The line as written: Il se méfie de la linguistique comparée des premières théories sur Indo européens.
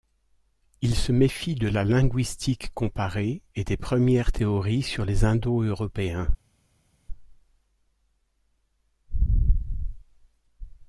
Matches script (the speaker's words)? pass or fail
fail